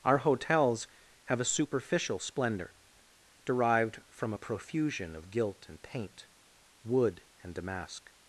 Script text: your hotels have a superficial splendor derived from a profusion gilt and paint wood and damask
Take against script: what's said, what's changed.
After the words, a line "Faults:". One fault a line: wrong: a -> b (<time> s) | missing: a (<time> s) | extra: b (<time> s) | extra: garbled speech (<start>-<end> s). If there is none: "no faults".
our hotels have a superficial splendor derived from a profusion of gilt and paint wood and damask
Faults:
wrong: your -> our (0.0 s)
extra: of (5.1 s)